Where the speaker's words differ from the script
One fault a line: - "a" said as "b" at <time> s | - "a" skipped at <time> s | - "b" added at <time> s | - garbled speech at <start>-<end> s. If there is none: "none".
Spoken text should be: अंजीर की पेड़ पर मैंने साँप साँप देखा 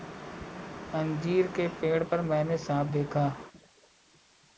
- "की" said as "के" at 1.6 s
- "साँप" skipped at 2.9 s